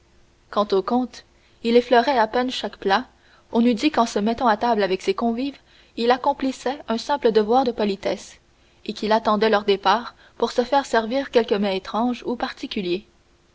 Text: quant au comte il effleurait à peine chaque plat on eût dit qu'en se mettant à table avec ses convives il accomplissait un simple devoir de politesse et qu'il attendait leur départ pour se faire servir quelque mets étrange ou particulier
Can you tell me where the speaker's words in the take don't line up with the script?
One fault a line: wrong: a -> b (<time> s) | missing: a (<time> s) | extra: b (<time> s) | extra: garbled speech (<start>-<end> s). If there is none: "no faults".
no faults